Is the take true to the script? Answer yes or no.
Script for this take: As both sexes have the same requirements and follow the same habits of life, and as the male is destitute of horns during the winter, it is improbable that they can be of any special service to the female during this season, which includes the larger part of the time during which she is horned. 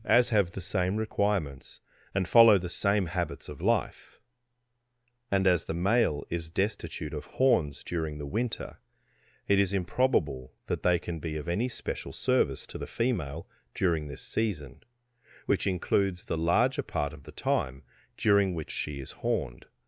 no